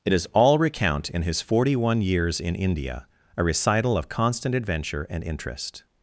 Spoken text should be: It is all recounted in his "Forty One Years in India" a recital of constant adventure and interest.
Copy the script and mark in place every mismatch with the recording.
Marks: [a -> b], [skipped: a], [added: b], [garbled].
It is all [recounted -> recount] in his "Forty One Years in India" a recital of constant adventure and interest.